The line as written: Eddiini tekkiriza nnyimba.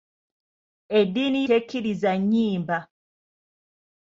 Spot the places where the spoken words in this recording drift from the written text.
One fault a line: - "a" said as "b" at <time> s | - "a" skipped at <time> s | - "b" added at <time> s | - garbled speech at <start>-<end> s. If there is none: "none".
none